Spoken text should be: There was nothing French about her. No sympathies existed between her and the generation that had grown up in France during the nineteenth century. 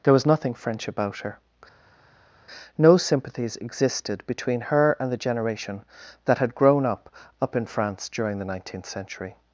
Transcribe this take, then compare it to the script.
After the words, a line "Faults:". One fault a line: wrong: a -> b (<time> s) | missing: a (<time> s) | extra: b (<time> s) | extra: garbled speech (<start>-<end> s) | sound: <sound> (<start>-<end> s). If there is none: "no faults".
There was nothing French about her. No sympathies existed between her and the generation that had grown up up in France during the nineteenth century.
Faults:
extra: up (7.4 s)